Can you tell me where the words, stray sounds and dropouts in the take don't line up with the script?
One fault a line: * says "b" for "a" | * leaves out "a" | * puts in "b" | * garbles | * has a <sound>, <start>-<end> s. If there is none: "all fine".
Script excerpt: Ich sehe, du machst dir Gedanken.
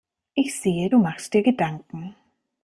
all fine